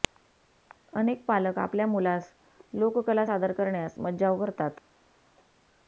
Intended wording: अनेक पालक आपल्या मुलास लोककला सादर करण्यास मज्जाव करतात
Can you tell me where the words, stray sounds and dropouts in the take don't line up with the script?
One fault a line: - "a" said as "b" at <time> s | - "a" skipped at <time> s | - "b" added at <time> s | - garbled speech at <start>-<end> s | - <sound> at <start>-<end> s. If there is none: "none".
none